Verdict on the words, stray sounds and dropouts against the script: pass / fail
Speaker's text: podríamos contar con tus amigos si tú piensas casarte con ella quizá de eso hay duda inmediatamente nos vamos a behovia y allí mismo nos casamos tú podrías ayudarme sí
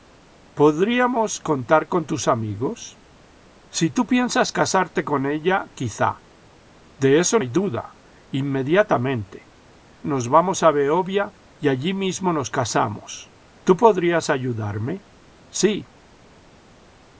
pass